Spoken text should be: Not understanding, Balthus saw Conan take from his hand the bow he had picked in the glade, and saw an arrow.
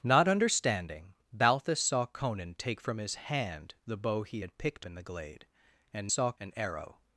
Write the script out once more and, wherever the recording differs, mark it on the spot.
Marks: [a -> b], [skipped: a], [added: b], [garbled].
Not understanding, Balthus saw Conan take from his hand the bow he had picked in the glade, and saw an arrow.